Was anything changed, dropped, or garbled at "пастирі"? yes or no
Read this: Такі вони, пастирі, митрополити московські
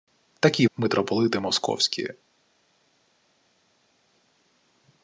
yes